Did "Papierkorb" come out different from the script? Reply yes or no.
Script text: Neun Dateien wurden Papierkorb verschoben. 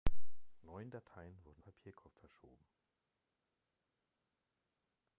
no